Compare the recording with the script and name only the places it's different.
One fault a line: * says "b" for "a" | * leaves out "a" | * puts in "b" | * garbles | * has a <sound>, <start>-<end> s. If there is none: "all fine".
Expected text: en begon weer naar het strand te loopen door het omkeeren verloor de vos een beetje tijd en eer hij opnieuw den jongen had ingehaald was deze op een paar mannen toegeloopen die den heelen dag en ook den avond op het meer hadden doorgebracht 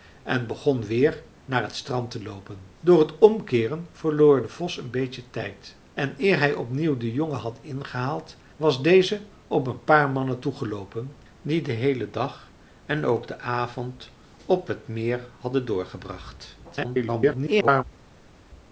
* garbles